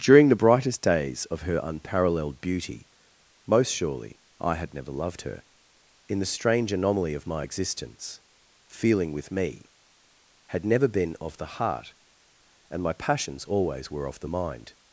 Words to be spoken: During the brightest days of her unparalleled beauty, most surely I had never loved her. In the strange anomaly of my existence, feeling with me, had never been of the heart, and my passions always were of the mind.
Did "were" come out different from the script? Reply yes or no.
no